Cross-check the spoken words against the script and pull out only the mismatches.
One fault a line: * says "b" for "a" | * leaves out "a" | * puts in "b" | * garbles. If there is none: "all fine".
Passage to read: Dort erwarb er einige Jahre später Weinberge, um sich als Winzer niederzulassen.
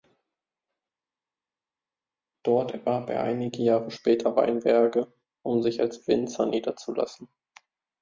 all fine